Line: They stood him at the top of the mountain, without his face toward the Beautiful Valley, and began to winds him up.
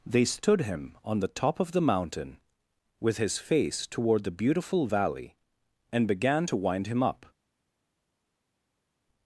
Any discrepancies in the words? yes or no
yes